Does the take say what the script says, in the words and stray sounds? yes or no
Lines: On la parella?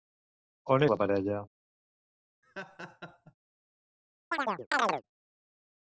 no